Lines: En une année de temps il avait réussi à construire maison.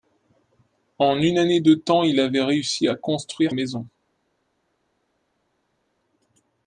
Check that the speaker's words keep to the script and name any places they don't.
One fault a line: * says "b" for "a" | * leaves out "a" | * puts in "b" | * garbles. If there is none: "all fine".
all fine